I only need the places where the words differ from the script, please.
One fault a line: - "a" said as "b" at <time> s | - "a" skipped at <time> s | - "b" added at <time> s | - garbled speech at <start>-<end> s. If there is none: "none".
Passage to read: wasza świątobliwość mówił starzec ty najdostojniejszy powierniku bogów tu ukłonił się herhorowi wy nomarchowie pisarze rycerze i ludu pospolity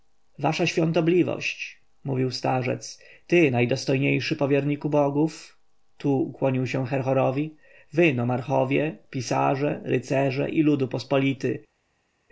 none